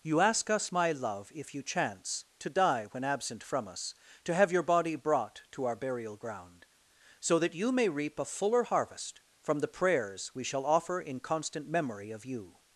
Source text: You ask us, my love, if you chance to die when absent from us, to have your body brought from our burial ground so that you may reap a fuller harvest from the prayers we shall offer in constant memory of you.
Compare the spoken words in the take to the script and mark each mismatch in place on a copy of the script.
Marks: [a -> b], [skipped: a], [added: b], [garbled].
You ask us, my love, if you chance to die when absent from us, to have your body brought [from -> to] our burial ground so that you may reap a fuller harvest from the prayers we shall offer in constant memory of you.